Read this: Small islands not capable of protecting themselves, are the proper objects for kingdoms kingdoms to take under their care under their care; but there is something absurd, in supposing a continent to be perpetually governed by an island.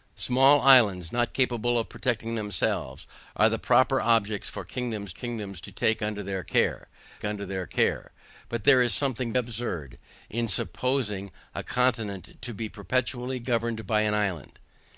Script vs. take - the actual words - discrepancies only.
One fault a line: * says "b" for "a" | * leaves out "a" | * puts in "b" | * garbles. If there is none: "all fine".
all fine